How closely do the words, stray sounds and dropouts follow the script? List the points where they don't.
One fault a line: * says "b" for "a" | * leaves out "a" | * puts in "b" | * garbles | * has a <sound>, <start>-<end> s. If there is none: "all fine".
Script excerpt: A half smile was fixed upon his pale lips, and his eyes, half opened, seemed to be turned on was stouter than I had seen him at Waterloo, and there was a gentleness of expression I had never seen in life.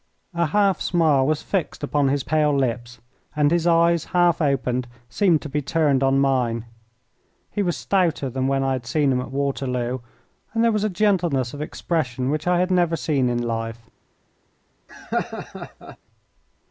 * puts in "mine He"
* puts in "when"
* puts in "which"
* has a laugh, 14.9-16.0 s